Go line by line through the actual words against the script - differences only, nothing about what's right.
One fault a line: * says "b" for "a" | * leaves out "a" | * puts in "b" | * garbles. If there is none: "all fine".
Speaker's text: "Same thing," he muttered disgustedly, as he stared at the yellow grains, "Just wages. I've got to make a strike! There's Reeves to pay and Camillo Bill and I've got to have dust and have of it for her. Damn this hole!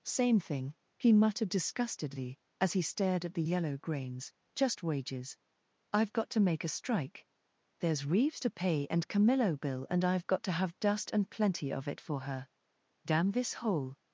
* says "plenty" for "have"